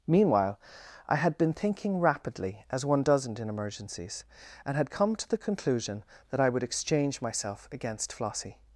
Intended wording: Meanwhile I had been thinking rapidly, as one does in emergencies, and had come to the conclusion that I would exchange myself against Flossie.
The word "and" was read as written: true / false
true